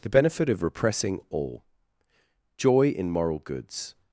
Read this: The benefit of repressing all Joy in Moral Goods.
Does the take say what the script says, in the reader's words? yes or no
yes